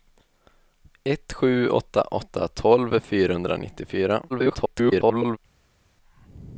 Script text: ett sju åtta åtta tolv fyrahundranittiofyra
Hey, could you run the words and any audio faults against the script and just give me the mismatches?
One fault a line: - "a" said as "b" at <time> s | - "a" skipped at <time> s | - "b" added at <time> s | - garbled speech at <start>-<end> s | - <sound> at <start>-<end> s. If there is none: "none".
- garbled speech at 4.3-5.4 s